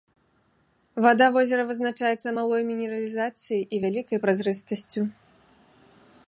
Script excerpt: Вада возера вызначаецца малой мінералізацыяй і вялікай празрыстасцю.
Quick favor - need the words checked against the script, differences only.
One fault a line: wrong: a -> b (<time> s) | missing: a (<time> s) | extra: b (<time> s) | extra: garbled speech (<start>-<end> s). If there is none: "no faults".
no faults